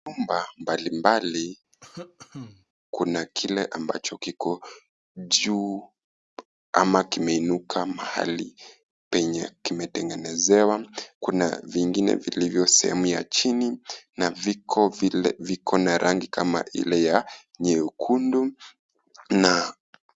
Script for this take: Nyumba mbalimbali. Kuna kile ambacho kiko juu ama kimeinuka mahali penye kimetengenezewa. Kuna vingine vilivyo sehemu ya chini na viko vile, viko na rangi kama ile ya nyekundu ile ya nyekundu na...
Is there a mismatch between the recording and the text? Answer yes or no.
yes